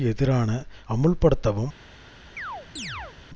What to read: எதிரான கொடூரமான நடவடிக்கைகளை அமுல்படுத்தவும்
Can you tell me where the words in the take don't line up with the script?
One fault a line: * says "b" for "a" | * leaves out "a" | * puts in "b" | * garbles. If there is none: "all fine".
* leaves out "கொடூரமான நடவடிக்கைகளை"